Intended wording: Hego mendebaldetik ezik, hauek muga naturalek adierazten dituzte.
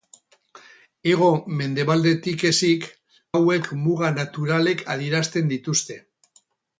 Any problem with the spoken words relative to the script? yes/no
no